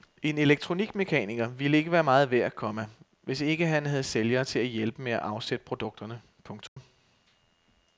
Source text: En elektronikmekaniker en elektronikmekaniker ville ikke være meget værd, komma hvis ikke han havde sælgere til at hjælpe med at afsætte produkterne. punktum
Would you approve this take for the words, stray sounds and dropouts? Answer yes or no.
no